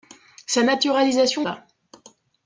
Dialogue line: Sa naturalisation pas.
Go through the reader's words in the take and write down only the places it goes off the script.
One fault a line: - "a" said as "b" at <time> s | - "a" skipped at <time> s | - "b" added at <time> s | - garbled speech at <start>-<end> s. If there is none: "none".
none